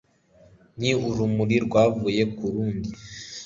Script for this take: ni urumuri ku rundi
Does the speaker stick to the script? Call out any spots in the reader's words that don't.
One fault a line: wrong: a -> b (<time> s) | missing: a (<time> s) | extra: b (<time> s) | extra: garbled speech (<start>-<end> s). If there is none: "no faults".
extra: rwavuye (1.6 s)